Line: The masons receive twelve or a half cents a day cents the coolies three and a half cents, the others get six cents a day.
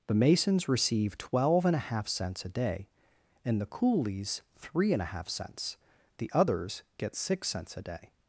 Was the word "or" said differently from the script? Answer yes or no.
yes